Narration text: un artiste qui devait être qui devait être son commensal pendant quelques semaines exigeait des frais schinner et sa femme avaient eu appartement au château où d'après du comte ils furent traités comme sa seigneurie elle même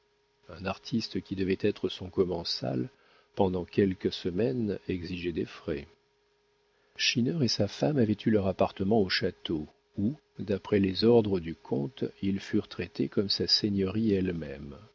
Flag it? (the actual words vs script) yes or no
yes